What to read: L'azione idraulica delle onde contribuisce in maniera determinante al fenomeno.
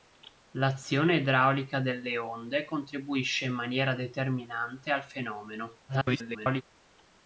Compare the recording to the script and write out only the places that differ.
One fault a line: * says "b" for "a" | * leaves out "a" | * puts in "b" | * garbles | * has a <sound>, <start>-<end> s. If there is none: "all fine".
* garbles